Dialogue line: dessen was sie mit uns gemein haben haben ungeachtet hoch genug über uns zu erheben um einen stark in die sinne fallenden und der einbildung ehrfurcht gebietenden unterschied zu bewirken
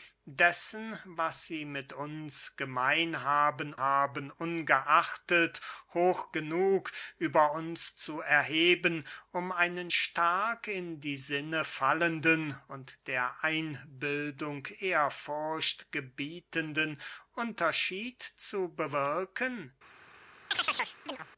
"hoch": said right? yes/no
yes